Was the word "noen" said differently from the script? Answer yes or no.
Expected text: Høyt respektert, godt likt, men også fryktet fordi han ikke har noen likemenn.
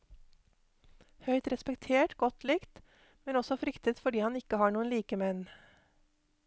no